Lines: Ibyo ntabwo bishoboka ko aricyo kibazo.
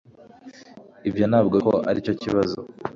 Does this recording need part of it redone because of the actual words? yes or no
yes